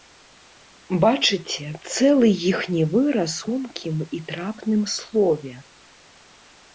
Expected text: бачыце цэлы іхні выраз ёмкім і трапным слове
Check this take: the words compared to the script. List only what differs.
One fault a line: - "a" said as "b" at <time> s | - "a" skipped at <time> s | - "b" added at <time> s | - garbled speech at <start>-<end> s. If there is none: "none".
none